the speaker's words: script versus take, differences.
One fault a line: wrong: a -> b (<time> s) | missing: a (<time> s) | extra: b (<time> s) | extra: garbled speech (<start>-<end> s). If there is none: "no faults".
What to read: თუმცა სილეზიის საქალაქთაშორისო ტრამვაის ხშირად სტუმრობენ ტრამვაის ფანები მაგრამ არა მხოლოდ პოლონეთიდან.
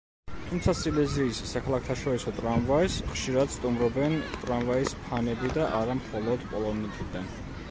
wrong: მაგრამ -> და (5.6 s)